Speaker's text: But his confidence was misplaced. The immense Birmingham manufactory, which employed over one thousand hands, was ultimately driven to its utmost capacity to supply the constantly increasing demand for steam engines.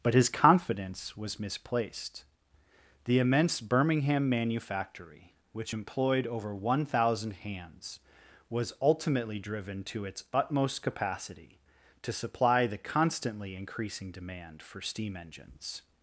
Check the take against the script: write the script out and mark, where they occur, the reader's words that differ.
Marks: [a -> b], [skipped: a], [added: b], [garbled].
But his confidence was misplaced. The immense Birmingham manufactory, which employed over one thousand hands, was ultimately driven to its utmost capacity to supply the constantly increasing demand for steam engines.